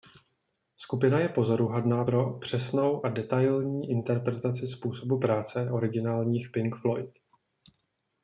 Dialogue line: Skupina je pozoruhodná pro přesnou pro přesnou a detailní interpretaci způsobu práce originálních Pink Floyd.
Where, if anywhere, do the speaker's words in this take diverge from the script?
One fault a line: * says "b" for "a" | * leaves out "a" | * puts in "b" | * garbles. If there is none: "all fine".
* leaves out "pro přesnou"